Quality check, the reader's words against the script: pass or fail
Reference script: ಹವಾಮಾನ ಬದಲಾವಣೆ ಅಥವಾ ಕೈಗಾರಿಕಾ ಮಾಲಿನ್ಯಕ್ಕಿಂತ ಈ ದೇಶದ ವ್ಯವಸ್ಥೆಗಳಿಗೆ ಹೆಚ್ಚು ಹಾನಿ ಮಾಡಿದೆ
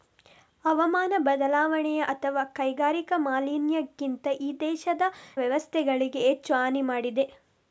pass